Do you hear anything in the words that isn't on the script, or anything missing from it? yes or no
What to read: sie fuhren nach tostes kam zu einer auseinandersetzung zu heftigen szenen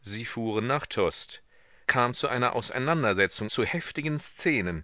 no